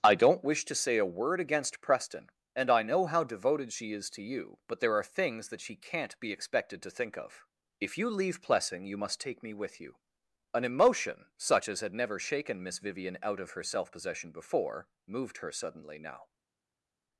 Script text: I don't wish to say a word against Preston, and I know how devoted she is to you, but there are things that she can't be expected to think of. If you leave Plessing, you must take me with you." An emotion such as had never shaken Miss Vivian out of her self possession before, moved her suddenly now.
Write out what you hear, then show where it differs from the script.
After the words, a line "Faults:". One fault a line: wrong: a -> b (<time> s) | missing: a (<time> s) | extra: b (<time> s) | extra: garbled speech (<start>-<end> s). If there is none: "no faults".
I don't wish to say a word against Preston, and I know how devoted she is to you, but there are things that she can't be expected to think of. If you leave Plessing, you must take me with you." An emotion such as had never shaken Miss Vivian out of her self possession before, moved her suddenly now.
Faults:
no faults